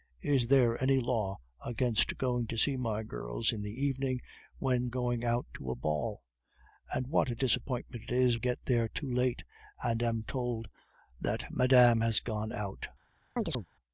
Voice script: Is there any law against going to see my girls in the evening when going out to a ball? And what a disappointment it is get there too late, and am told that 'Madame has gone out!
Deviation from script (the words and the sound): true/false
true